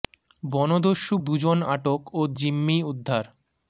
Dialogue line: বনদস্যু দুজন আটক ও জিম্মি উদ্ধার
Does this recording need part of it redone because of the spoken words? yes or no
no